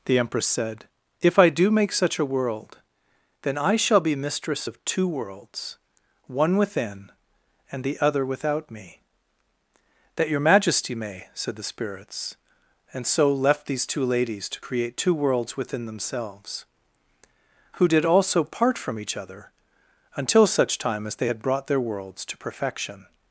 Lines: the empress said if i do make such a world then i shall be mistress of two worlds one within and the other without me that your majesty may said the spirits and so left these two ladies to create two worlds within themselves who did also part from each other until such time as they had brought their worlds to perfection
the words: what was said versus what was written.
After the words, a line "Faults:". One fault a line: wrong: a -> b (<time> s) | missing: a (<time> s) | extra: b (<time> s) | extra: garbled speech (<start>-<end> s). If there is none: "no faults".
the empress said if i do make such a world then i shall be mistress of two worlds one within and the other without me that your majesty may said the spirits and so left these two ladies to create two worlds within themselves who did also part from each other until such time as they had brought their worlds to perfection
Faults:
no faults